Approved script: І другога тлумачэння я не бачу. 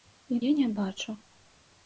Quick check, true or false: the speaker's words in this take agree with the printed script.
false